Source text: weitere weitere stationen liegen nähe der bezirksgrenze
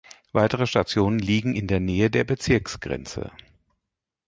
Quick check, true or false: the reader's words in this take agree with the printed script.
false